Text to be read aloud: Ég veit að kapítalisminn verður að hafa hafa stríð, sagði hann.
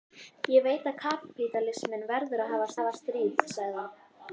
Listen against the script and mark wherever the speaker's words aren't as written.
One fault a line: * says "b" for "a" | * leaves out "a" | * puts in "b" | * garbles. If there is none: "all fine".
all fine